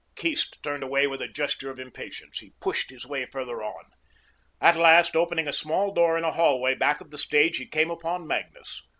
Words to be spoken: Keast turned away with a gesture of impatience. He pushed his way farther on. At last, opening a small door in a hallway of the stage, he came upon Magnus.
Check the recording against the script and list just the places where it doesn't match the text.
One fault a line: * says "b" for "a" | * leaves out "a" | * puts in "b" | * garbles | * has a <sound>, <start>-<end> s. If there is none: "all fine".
* puts in "back"